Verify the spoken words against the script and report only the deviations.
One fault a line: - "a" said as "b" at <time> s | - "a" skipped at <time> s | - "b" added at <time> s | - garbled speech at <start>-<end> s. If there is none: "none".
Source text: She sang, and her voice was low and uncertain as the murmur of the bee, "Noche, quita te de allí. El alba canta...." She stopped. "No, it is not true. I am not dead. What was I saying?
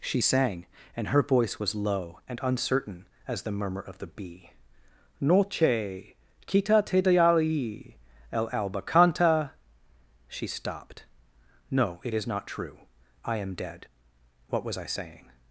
- "not" skipped at 13.5 s